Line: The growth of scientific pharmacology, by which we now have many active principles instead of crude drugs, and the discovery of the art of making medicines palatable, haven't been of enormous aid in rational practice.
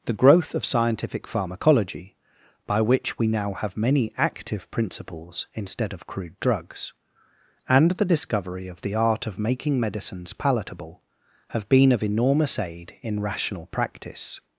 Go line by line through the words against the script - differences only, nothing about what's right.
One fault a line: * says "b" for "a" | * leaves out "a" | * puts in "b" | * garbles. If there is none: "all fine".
* says "have" for "haven't"